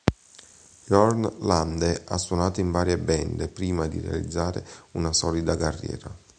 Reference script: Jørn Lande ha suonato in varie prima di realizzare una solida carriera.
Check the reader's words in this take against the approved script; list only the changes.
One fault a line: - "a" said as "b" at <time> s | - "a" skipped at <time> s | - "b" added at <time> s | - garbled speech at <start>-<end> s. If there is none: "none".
- "band" added at 3.0 s